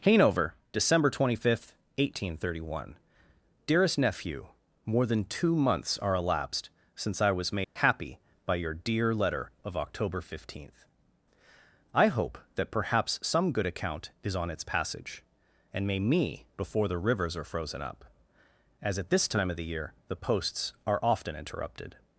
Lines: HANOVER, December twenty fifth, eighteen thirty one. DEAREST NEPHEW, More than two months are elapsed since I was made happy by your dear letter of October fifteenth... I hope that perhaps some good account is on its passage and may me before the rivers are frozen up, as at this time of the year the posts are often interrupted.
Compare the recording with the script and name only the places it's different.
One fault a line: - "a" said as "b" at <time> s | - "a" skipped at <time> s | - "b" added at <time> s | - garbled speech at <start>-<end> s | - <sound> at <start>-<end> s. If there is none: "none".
- dropout at 7.6-7.8 s